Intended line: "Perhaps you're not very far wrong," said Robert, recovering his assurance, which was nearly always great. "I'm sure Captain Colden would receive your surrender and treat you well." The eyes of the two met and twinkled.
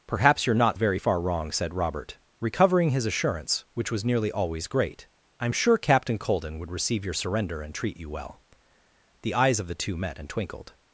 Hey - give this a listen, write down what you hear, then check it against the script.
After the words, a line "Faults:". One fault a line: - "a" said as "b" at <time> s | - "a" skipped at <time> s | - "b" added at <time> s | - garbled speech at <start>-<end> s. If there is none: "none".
"Perhaps you're not very far wrong," said Robert, recovering his assurance, which was nearly always great. "I'm sure Captain Colden would receive your surrender and treat you well." The eyes of the two met and twinkled.
Faults:
none